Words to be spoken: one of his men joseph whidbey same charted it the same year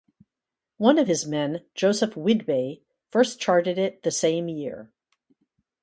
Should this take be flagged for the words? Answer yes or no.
yes